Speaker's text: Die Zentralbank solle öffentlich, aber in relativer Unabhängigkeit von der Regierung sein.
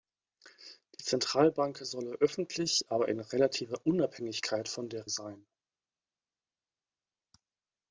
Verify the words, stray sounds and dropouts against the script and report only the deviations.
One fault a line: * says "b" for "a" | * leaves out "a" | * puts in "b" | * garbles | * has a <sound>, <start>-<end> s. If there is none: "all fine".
* leaves out "Regierung"